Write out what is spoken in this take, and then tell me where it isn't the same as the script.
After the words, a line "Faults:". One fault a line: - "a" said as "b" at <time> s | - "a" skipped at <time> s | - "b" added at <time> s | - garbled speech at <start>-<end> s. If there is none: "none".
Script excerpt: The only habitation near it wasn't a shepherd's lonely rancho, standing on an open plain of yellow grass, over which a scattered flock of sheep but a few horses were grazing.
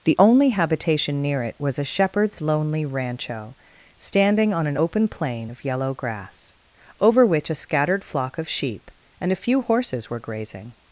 The only habitation near it was a shepherd's lonely rancho, standing on an open plain of yellow grass, over which a scattered flock of sheep and a few horses were grazing.
Faults:
- "wasn't" said as "was" at 1.6 s
- "but" said as "and" at 9.2 s